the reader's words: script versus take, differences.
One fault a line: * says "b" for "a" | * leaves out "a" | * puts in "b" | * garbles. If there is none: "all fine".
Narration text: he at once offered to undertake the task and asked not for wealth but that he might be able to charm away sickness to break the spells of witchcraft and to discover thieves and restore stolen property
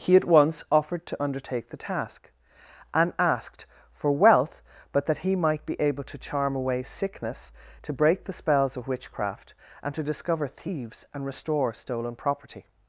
* leaves out "not"